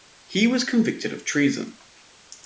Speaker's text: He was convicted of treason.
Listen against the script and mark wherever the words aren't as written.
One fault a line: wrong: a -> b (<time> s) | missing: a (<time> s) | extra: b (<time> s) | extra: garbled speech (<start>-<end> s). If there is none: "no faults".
no faults